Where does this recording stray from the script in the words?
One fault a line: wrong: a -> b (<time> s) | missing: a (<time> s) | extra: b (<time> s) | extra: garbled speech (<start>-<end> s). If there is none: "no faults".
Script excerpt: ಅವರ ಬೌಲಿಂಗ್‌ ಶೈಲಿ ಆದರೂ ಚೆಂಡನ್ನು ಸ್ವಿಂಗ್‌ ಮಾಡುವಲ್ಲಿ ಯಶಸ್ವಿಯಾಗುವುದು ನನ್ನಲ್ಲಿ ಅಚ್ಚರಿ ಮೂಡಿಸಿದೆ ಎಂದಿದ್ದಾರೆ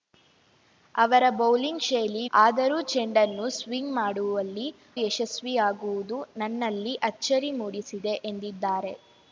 no faults